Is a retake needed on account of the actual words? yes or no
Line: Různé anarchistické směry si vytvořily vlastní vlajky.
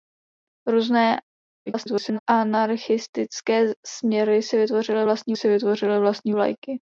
yes